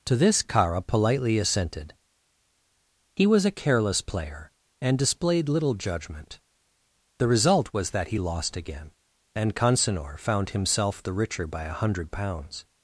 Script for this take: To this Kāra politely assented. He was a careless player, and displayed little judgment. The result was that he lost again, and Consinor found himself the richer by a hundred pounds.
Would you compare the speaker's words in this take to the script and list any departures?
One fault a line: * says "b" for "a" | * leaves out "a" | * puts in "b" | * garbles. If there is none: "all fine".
all fine